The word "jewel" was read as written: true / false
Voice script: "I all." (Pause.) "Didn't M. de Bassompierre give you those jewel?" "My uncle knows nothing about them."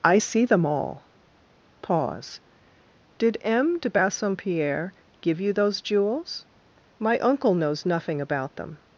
false